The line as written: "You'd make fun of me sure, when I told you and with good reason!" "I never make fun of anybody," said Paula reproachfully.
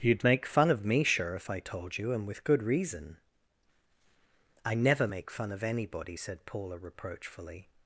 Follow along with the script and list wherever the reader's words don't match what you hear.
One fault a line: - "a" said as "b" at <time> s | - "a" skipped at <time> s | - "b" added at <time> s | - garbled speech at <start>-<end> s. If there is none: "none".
- "when" said as "if" at 1.4 s